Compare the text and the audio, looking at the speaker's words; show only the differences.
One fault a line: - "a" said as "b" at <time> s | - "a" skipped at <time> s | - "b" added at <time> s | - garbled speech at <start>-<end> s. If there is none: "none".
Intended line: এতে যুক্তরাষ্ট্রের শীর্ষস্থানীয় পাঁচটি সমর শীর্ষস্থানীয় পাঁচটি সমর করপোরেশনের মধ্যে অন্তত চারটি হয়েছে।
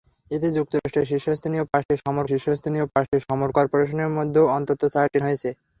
none